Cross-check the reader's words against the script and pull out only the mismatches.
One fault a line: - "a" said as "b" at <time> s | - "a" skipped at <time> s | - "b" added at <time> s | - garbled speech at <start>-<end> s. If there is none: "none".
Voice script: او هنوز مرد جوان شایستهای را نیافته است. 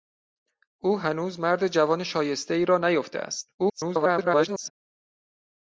- garbled speech at 3.6-4.7 s